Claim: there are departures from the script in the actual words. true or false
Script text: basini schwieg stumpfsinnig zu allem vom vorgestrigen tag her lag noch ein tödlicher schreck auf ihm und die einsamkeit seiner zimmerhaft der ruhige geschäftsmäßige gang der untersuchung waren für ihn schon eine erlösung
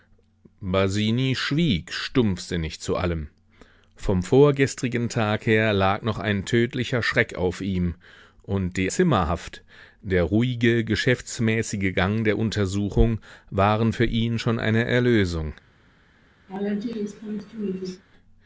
true